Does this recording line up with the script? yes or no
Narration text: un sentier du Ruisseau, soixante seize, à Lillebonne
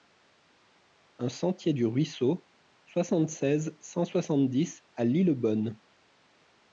no